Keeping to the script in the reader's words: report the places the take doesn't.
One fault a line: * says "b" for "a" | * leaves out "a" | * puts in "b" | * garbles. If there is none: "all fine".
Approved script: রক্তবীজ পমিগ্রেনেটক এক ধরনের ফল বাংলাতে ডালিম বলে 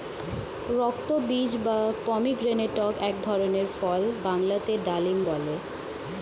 * puts in "বা"